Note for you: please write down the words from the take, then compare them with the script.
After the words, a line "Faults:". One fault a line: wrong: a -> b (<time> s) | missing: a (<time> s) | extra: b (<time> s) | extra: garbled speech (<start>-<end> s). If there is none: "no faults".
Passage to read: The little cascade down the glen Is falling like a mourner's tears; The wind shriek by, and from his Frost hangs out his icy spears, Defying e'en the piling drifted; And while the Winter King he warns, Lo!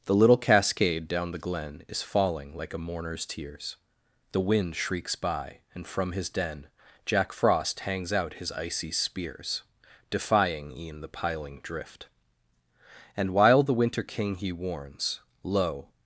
The little cascade down the glen Is falling like a mourner's tears; The wind shrieks by, and from his den Jack Frost hangs out his icy spears, Defying e'en the piling drift; And while the Winter King he warns, Lo!
Faults:
wrong: shriek -> shrieks (4.8 s)
extra: den Jack (6.3 s)
wrong: drifted -> drift (11.6 s)